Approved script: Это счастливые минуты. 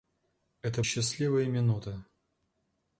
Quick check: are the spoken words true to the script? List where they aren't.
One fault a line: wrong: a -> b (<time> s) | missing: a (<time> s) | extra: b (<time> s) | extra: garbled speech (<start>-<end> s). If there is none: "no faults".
no faults